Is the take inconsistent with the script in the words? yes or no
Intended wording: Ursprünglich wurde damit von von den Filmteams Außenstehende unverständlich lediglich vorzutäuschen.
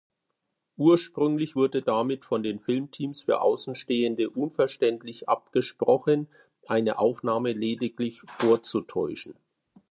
yes